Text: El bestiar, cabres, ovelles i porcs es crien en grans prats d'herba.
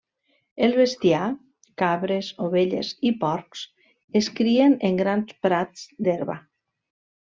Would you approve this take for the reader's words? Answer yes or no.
yes